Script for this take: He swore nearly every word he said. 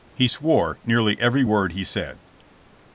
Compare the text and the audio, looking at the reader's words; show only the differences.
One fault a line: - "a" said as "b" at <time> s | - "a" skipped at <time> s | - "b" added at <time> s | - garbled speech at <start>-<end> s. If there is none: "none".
none